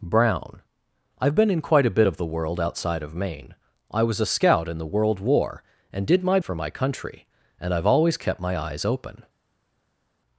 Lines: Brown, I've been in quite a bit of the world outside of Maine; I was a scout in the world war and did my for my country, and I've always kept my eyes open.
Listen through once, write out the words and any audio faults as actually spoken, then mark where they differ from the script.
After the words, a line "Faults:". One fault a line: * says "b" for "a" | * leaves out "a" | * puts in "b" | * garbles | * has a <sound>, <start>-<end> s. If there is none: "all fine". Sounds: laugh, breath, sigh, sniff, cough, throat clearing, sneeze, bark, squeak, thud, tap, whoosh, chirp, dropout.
Brown, I've been in quite a bit of the world outside of Maine; I was a scout in the world war and did my for my country, and I've always kept my eyes open.
Faults:
all fine